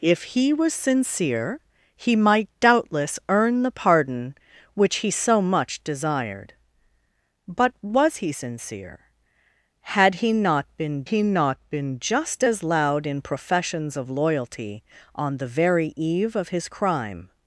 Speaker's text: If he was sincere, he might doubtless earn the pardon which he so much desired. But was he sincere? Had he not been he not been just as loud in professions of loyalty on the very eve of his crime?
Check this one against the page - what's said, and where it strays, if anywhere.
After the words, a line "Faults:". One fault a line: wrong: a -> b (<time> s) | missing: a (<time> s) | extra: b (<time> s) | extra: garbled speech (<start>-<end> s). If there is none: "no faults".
If he was sincere, he might doubtless earn the pardon which he so much desired. But was he sincere? Had he not been he not been just as loud in professions of loyalty on the very eve of his crime?
Faults:
no faults